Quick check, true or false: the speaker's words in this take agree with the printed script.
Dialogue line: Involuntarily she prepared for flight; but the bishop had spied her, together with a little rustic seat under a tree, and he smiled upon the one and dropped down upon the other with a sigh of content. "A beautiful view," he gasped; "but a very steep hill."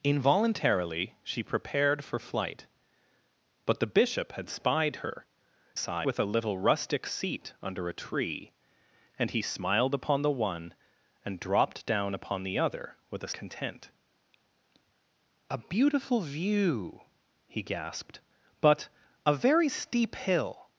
false